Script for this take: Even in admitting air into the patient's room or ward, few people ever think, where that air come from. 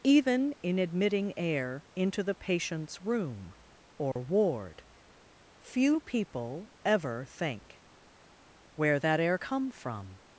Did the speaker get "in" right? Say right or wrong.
right